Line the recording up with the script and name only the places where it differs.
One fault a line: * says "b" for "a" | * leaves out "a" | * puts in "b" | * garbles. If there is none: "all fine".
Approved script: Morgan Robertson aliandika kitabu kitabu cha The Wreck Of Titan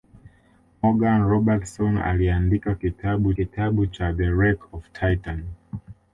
all fine